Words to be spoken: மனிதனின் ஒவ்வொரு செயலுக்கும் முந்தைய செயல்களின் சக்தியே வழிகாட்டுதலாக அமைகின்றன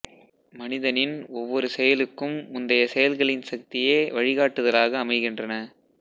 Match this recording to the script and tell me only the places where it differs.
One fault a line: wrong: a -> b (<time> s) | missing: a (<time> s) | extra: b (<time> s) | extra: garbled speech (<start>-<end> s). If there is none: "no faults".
no faults